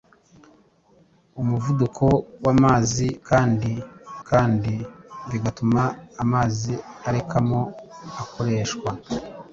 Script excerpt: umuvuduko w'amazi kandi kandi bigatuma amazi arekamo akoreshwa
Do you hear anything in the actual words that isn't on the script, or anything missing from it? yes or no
no